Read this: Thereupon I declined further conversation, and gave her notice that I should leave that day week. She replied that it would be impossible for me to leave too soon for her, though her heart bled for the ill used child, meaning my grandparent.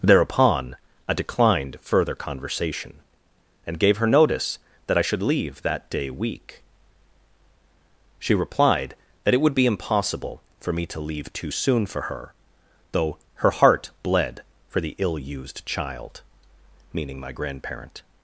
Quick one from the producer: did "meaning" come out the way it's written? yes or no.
yes